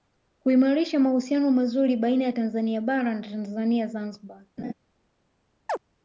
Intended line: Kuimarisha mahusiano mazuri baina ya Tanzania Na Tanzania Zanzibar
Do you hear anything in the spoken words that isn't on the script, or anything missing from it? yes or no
yes